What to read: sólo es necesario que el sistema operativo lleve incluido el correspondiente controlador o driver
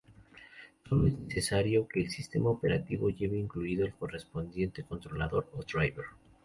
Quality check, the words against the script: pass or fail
pass